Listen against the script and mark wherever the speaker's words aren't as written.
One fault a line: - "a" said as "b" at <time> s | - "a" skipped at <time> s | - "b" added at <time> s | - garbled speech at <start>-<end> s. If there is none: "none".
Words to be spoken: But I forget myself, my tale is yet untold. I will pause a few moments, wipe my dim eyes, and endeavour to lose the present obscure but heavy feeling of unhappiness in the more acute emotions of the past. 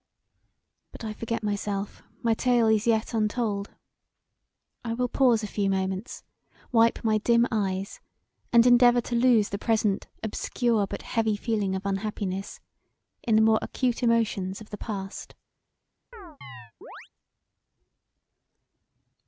none